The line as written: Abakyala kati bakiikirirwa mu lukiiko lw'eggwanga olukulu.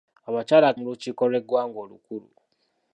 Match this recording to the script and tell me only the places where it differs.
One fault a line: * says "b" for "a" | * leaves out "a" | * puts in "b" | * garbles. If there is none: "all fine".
* leaves out "kati bakiikirirwa"